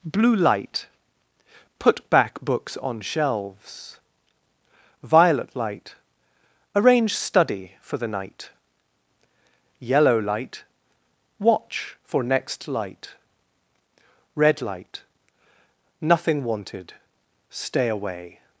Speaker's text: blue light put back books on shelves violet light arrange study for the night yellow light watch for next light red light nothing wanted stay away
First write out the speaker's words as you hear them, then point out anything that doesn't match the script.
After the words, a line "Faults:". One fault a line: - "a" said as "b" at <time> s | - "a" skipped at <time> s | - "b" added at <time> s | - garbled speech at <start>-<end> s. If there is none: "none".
blue light put back books on shelves violet light arrange study for the night yellow light watch for next light red light nothing wanted stay away
Faults:
none